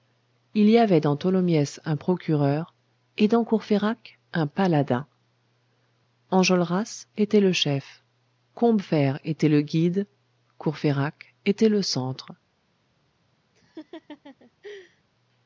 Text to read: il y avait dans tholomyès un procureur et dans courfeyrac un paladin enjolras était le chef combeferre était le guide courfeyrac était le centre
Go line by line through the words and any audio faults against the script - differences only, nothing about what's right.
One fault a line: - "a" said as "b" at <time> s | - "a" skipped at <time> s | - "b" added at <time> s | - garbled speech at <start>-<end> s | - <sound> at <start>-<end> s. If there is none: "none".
- laugh at 13.5-15.0 s